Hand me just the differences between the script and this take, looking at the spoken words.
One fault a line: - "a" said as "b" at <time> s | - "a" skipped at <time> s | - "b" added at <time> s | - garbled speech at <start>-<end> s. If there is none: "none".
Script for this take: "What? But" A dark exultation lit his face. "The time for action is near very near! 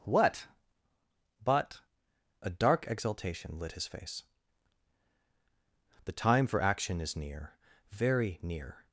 none